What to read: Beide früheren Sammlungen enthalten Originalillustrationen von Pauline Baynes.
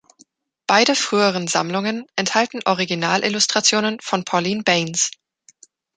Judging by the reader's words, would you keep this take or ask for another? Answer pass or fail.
pass